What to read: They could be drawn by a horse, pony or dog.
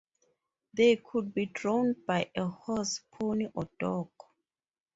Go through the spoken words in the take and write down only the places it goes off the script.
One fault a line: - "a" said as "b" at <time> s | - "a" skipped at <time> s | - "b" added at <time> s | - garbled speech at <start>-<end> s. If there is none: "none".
none